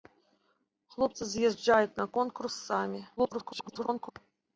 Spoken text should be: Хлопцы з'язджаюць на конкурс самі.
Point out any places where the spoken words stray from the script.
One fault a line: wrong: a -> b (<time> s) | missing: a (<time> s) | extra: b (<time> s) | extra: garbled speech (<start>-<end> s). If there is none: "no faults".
extra: garbled speech (3.2-4.1 s)